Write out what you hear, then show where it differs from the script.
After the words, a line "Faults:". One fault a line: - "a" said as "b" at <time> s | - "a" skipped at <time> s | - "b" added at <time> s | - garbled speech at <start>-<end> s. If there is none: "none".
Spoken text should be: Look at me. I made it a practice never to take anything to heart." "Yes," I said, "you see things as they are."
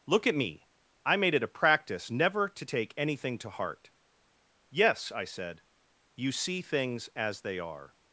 Look at me. I made it a practice never to take anything to heart." "Yes," I said, "you see things as they are."
Faults:
none